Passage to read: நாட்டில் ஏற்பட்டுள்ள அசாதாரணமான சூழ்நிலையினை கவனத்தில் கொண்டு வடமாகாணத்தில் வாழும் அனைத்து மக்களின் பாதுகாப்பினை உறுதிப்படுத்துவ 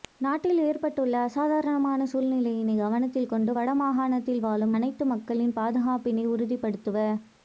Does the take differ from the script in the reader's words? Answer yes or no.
no